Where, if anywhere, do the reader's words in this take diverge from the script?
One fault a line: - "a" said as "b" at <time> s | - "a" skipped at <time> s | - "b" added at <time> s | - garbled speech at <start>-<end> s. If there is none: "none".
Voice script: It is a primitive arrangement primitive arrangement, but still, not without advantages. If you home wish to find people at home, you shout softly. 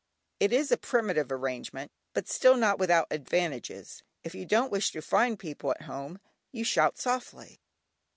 - "primitive arrangement" skipped at 1.9 s
- "home" said as "don't" at 4.5 s